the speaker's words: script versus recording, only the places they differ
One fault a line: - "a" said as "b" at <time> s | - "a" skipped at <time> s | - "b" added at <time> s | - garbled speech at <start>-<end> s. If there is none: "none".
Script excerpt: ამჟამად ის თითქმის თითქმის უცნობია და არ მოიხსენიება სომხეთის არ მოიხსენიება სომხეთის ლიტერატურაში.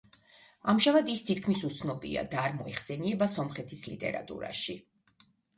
- "თითქმის" skipped at 1.6 s
- "არ მოიხსენიება სომხეთის" skipped at 3.9 s